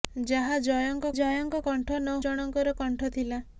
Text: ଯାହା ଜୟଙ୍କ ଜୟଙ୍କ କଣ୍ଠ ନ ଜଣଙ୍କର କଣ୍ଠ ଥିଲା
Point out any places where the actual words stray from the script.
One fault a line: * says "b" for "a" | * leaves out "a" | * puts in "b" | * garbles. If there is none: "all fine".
all fine